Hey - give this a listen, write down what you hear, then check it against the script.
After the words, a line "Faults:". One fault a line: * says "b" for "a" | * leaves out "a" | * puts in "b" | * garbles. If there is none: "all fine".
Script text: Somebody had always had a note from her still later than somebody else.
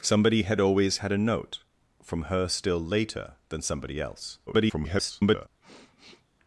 Somebody had always had a note from her still later than somebody else. [garbled]
Faults:
* garbles